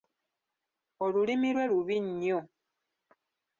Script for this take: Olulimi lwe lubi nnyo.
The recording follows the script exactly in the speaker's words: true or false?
true